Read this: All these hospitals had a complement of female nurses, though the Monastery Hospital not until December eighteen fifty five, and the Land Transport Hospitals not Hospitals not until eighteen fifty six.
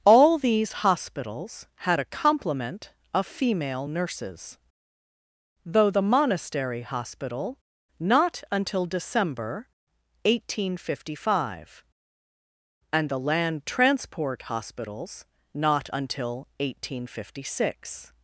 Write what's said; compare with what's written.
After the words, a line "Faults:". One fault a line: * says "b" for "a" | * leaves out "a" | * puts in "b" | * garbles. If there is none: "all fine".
All these hospitals had a complement of female nurses, though the Monastery Hospital not until December eighteen fifty five, and the Land Transport Hospitals not until eighteen fifty six.
Faults:
* leaves out "Hospitals not"